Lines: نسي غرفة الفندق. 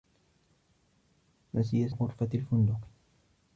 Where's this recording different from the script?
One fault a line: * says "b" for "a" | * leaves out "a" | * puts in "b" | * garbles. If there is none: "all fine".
all fine